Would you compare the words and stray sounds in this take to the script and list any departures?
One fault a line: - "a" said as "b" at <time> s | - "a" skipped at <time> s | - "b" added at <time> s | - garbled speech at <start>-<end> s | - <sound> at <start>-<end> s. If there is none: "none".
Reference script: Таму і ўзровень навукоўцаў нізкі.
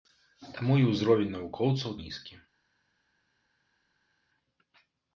none